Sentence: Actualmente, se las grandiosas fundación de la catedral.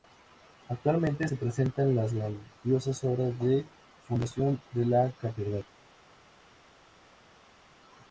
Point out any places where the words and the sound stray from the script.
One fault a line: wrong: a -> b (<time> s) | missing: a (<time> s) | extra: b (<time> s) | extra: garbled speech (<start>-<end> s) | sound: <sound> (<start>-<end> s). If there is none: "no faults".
extra: presentan (1.4 s)
extra: obras de (3.1 s)